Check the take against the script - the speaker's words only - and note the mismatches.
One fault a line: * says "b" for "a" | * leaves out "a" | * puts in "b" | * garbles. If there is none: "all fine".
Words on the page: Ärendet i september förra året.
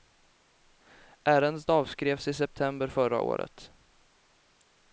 * puts in "avskrevs"